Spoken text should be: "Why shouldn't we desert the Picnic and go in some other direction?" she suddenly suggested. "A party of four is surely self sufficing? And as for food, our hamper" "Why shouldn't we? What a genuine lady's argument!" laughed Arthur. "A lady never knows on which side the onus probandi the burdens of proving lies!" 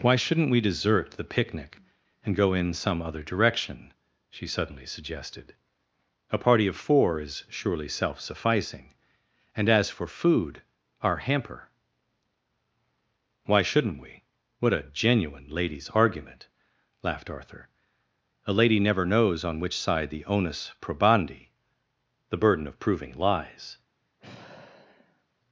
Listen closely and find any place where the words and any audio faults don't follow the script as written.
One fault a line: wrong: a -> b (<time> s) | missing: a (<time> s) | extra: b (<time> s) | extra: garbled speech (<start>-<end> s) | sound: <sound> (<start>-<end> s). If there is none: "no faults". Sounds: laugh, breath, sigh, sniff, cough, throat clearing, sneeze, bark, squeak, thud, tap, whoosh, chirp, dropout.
wrong: burdens -> burden (22.4 s)
sound: sigh (24.2-25.3 s)